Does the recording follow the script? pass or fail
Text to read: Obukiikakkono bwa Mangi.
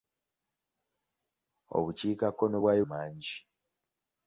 pass